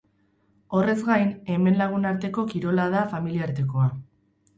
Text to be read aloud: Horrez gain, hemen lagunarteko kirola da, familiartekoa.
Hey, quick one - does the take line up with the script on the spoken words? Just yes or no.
yes